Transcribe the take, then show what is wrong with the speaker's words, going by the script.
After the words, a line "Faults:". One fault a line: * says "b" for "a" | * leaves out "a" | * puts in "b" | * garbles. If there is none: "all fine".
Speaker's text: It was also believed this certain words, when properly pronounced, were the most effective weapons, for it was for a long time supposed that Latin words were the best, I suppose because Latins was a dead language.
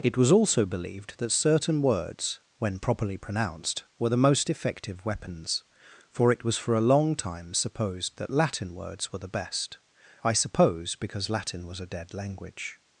It was also believed that certain words, when properly pronounced, were the most effective weapons, for it was for a long time supposed that Latin words were the best, I suppose because Latin was a dead language.
Faults:
* says "that" for "this"
* says "Latin" for "Latins"